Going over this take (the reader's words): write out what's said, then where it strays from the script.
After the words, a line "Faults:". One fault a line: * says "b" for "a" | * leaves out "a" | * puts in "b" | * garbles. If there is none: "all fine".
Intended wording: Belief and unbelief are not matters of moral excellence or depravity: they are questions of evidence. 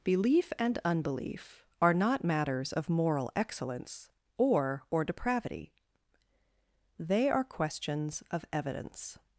Belief and unbelief are not matters of moral excellence or or depravity: they are questions of evidence.
Faults:
* puts in "or"